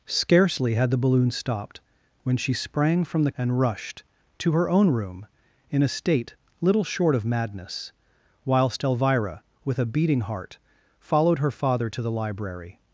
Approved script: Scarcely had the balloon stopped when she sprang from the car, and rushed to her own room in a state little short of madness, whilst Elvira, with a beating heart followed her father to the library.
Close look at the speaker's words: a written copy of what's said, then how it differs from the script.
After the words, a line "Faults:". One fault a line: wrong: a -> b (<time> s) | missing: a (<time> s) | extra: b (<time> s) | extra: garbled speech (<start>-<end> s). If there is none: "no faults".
Scarcely had the balloon stopped when she sprang from the and rushed to her own room in a state little short of madness, whilst Elvira, with a beating heart followed her father to the library.
Faults:
missing: car (3.3 s)